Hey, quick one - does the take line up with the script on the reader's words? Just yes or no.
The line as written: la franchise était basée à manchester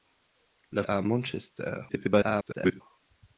no